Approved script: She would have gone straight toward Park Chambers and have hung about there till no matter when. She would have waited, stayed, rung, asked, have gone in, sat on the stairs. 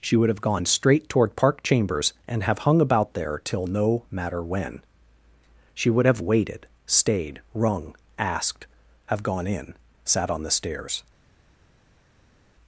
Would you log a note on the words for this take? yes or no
no